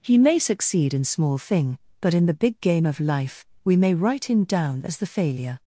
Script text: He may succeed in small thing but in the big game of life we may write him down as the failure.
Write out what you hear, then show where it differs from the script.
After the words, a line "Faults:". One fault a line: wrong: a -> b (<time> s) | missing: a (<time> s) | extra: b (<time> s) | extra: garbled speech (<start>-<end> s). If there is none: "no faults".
He may succeed in small thing but in the big game of life we may write him down as the failure.
Faults:
no faults